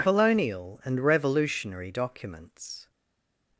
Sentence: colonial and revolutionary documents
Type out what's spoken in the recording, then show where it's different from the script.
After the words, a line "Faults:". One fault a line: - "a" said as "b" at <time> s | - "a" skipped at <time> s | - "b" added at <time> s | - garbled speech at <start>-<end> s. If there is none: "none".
colonial and revolutionary documents
Faults:
none